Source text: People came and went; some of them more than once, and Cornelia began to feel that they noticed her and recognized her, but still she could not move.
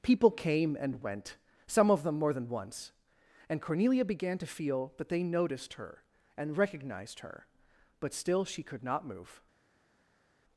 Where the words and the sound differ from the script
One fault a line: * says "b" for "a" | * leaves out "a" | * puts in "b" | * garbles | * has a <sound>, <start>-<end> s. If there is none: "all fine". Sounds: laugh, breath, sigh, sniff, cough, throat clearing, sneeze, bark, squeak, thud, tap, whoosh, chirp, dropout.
all fine